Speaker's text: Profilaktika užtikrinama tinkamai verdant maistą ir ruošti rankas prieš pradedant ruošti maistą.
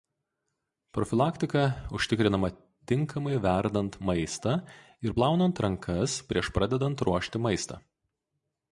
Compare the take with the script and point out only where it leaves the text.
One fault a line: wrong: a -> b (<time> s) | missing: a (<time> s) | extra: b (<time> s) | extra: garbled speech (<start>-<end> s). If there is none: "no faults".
wrong: ruošti -> plaunant (5.1 s)